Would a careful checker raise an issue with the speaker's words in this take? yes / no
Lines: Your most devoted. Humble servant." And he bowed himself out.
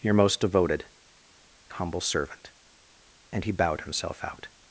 no